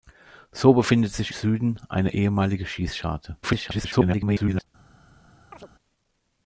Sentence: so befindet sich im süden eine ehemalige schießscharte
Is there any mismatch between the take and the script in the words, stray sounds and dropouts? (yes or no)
yes